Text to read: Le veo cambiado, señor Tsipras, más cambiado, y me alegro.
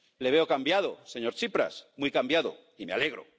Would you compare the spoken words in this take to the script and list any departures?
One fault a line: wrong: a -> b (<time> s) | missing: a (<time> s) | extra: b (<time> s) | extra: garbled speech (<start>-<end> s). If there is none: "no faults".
wrong: más -> muy (2.0 s)